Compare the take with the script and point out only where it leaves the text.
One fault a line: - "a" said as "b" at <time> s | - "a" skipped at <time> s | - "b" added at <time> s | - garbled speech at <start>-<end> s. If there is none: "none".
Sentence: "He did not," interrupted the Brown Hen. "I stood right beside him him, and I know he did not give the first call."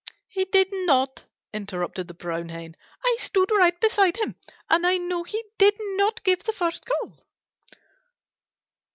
- "him" skipped at 4.4 s